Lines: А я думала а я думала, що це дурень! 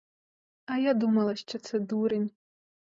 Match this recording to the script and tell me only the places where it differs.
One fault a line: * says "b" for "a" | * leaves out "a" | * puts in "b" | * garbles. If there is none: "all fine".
* leaves out "а я думала"